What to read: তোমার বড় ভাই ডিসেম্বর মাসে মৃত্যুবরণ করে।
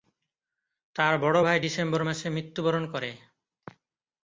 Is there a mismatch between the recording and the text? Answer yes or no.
yes